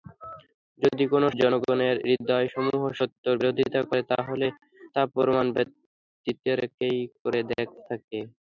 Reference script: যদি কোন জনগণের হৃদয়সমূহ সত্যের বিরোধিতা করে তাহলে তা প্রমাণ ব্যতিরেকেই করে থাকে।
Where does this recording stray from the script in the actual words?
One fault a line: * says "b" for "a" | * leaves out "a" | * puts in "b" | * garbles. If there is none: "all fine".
all fine